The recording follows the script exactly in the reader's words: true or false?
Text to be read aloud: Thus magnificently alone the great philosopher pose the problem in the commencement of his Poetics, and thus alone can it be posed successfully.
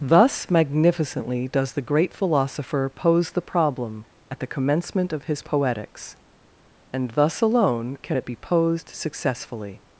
false